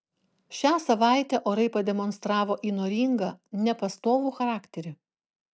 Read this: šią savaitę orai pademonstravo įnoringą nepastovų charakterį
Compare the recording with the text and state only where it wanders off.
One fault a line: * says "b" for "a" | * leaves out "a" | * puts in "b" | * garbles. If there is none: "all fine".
all fine